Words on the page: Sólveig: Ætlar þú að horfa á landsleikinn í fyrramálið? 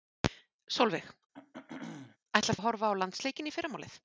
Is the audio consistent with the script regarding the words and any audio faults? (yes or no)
no